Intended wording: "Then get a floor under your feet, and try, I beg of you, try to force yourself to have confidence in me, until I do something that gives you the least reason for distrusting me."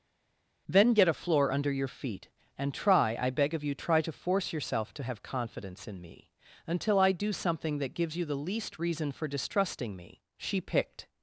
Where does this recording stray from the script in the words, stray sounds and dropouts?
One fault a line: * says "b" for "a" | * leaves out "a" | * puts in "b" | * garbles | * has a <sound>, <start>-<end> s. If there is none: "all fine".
* puts in "She picked"